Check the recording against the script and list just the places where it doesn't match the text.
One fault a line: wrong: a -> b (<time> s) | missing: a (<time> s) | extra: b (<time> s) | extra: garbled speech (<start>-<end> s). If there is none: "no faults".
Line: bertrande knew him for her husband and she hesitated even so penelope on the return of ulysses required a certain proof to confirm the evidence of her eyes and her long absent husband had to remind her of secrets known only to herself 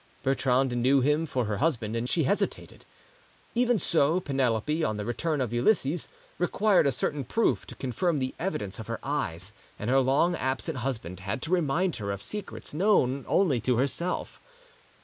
no faults